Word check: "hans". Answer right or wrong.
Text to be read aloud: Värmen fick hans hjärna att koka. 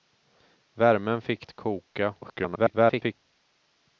wrong